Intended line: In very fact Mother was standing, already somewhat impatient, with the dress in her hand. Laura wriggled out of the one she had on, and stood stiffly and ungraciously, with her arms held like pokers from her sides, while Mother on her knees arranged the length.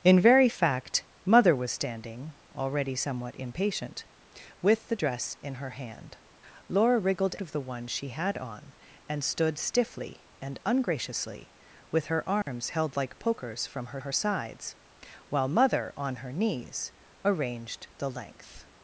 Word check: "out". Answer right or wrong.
wrong